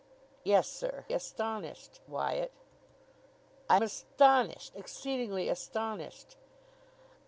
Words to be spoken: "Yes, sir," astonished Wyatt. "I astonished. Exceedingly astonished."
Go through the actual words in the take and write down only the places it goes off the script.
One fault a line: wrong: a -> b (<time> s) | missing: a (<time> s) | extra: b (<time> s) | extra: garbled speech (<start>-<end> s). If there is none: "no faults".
no faults